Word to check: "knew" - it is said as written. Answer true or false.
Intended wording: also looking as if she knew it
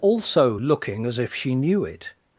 true